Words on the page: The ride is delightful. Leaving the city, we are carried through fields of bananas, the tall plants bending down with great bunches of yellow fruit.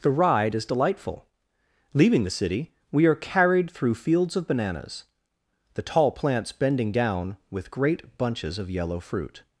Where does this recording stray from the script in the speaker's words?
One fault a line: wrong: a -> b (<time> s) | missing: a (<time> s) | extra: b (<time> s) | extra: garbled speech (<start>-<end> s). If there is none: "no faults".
no faults